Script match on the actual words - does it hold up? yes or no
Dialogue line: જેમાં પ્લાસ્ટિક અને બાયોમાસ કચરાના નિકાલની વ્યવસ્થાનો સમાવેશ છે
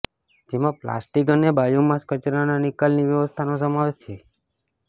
yes